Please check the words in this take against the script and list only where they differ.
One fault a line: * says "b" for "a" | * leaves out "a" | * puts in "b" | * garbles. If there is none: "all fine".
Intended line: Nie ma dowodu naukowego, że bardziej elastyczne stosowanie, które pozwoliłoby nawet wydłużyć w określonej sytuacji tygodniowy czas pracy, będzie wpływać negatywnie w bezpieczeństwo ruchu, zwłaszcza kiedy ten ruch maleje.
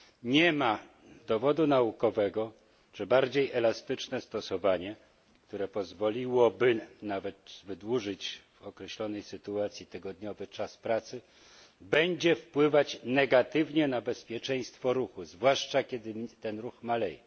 * says "na" for "w"